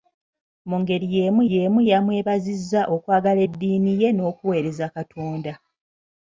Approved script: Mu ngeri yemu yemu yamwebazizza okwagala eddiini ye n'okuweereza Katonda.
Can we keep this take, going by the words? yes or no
yes